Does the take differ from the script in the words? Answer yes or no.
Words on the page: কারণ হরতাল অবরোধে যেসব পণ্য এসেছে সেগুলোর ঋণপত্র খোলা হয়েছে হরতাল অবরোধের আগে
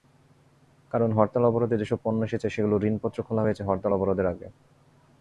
no